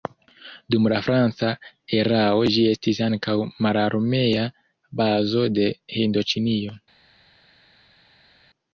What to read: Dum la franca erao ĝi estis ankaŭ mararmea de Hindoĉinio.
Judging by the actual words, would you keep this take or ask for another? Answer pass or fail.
fail